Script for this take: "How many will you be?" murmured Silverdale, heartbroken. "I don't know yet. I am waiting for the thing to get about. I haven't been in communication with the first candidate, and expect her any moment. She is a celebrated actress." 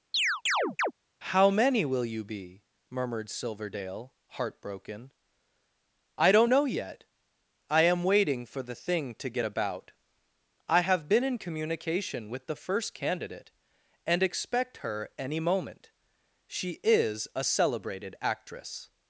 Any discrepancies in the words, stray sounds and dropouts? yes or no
yes